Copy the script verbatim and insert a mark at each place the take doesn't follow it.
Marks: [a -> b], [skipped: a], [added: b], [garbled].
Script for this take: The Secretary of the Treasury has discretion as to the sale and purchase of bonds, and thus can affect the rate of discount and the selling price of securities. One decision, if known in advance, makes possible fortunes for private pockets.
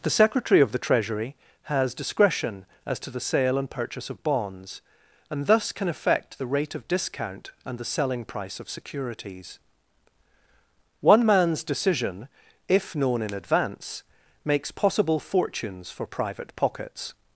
The Secretary of the Treasury has discretion as to the sale and purchase of bonds, and thus can affect the rate of discount and the selling price of securities. One [added: man's] decision, if known in advance, makes possible fortunes for private pockets.